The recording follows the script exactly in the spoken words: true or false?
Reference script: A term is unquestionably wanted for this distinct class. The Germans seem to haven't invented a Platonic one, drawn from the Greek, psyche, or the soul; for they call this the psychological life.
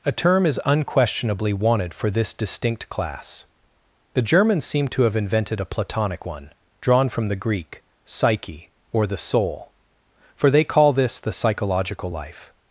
false